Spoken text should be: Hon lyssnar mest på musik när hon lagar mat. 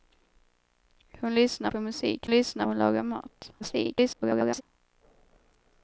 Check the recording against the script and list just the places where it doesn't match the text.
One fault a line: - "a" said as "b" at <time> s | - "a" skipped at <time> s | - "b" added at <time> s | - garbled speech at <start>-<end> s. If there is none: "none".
- "mest" skipped at 1.7 s
- "när" said as "lyssnar" at 2.3 s
- garbled speech at 3.6-4.6 s